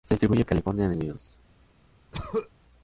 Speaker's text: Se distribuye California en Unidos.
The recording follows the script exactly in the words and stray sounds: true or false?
false